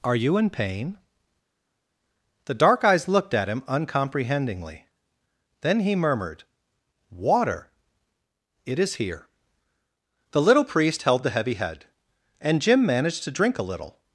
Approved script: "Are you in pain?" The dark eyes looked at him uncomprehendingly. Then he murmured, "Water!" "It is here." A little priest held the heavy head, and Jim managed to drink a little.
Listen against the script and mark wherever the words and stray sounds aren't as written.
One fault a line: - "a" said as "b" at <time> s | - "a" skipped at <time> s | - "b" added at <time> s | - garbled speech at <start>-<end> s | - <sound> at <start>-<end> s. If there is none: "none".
- "A" said as "The" at 10.3 s